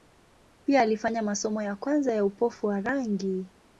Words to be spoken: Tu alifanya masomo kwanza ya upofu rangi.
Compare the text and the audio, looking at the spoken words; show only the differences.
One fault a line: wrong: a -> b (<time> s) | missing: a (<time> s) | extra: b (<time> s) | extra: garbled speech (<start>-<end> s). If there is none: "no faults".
wrong: Tu -> Pia (0.6 s)
extra: ya (1.6 s)
extra: wa (2.7 s)